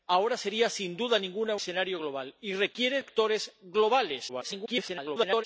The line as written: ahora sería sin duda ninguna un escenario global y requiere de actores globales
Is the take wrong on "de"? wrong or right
wrong